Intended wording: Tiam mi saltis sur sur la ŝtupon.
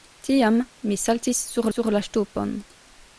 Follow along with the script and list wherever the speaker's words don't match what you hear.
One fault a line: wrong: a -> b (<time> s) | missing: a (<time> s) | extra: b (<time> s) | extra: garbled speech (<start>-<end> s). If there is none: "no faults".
no faults